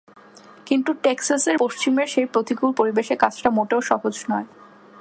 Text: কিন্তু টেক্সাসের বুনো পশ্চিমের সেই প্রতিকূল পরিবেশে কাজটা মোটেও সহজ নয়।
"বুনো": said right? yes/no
no